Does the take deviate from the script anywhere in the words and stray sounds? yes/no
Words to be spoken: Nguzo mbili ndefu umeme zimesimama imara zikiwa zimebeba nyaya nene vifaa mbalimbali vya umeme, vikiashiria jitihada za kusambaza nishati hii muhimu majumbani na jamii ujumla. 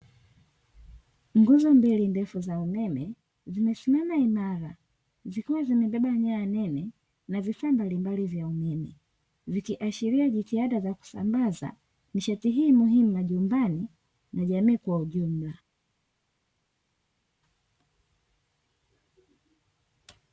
yes